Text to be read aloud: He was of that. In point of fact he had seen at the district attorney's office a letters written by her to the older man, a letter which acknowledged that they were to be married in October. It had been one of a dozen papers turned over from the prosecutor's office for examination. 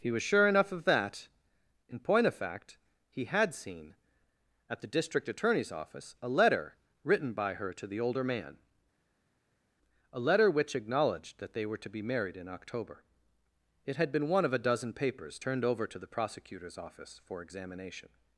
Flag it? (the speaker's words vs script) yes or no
yes